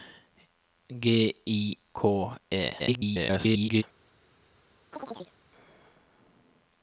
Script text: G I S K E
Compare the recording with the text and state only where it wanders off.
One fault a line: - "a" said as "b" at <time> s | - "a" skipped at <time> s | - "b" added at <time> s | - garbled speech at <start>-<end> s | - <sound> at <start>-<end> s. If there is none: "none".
- "S" skipped at 1.8 s
- garbled speech at 2.8-3.8 s
- chirp at 4.9-5.3 s